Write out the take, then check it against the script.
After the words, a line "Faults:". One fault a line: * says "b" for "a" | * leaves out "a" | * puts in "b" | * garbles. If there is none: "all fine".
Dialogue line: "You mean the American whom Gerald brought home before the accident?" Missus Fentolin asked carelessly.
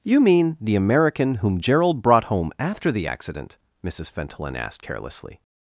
"You mean the American whom Gerald brought home after the accident?" Missus Fentolin asked carelessly.
Faults:
* says "after" for "before"